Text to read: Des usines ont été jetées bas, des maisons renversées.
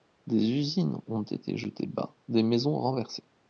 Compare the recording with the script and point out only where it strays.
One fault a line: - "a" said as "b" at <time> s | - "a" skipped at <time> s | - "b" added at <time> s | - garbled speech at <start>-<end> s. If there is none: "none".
none